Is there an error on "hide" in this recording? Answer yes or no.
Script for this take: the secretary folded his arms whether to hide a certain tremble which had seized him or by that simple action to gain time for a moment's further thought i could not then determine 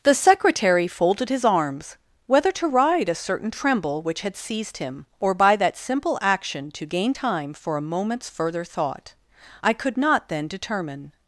yes